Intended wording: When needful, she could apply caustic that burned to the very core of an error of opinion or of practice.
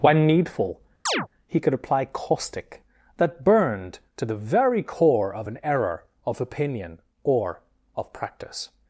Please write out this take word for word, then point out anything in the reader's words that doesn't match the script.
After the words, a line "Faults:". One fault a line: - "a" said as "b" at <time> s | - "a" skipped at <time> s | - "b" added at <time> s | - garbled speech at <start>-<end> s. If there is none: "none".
When needful, he could apply caustic that burned to the very core of an error of opinion or of practice.
Faults:
- "she" said as "he" at 1.5 s